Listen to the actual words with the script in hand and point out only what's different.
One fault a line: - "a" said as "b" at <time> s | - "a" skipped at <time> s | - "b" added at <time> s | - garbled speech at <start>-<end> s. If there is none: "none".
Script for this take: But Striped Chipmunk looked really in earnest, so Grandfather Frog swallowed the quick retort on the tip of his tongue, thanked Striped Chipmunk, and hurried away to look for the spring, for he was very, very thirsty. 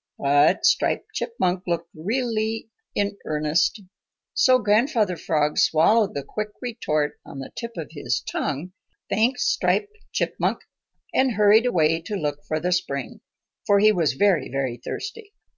none